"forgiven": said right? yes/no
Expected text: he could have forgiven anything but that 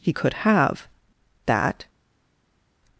no